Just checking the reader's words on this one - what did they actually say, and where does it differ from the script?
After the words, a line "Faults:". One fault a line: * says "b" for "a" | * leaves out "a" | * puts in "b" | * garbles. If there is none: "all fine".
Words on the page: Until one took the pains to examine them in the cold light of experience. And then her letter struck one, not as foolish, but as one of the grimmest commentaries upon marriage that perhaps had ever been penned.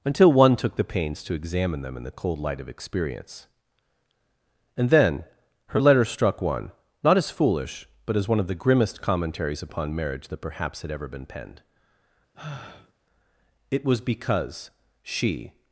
Until one took the pains to examine them in the cold light of experience. And then her letter struck one, not as foolish, but as one of the grimmest commentaries upon marriage that perhaps had ever been penned. "It was because she
Faults:
* puts in "It was because she"